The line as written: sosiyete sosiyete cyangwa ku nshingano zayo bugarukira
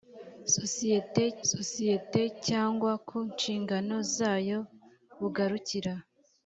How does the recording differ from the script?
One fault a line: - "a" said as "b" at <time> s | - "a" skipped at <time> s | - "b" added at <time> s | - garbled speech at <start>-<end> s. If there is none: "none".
none